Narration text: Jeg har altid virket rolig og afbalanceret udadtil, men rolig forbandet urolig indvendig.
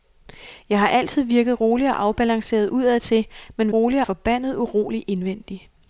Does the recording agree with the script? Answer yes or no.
yes